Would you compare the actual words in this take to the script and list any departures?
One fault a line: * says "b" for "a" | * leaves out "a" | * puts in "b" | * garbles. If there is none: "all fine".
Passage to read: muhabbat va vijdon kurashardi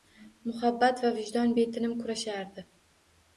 * puts in "betinim"